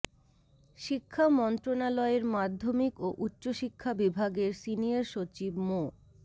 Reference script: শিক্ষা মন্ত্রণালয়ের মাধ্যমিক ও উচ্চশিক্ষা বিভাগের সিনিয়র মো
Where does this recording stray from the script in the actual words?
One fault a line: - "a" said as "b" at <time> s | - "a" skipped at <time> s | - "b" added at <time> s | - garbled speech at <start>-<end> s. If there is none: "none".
- "সচিব" added at 5.1 s